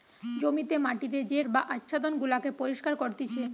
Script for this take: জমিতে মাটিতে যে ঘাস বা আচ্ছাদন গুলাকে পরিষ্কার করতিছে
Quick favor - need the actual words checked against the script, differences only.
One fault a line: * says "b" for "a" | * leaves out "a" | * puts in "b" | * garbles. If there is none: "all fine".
* leaves out "ঘাস"